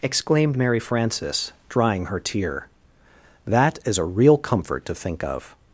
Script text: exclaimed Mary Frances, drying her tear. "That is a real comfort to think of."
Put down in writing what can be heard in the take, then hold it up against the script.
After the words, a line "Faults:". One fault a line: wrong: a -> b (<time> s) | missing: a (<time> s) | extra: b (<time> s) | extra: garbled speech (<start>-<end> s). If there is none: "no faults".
exclaimed Mary Frances, drying her tear. "That is a real comfort to think of."
Faults:
no faults